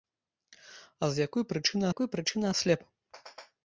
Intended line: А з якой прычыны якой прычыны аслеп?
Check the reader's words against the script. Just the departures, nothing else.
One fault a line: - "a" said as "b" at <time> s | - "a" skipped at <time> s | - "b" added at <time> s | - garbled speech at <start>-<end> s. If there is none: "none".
none